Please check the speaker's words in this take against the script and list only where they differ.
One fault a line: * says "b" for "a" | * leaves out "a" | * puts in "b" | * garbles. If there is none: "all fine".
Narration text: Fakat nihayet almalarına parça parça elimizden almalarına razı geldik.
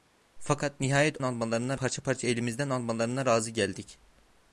all fine